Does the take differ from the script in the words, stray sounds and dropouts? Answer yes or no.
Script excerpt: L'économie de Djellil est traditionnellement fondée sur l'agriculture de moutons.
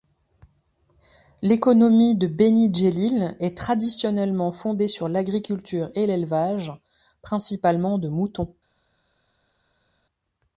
yes